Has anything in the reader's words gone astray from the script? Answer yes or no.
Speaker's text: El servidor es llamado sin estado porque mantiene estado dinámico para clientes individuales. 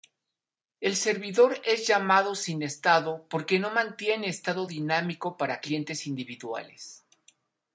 yes